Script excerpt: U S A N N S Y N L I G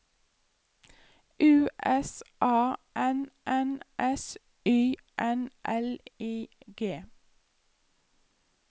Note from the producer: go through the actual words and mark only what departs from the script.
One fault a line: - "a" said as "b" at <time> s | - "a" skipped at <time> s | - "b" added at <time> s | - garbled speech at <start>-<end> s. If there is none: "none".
none